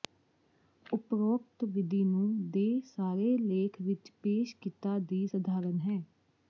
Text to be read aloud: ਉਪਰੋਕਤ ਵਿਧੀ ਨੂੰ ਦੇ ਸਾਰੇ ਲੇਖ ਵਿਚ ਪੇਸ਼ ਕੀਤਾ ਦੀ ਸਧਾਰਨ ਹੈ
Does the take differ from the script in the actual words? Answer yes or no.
no